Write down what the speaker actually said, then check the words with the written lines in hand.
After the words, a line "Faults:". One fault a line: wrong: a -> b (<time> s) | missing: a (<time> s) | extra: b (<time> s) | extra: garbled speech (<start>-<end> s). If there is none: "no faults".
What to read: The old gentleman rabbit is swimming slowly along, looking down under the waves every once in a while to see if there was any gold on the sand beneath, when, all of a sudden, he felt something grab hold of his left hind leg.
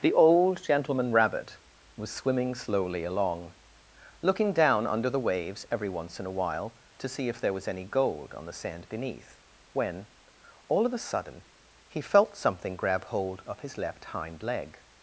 The old gentleman rabbit was swimming slowly along, looking down under the waves every once in a while to see if there was any gold on the sand beneath, when, all of a sudden, he felt something grab hold of his left hind leg.
Faults:
wrong: is -> was (1.9 s)